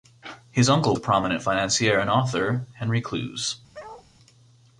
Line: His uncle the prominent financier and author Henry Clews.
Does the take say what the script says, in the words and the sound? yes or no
no